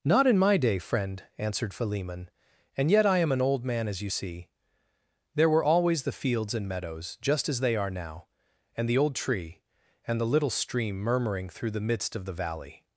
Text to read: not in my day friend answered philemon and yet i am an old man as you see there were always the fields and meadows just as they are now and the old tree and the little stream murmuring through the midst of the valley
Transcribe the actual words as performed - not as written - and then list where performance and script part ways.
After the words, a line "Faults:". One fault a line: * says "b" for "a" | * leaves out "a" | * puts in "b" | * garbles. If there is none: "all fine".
not in my day friend answered philemon and yet i am an old man as you see there were always the fields and meadows just as they are now and the old tree and the little stream murmuring through the midst of the valley
Faults:
all fine